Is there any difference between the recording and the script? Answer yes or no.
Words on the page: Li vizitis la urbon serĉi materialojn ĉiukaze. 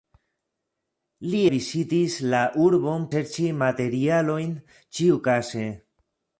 no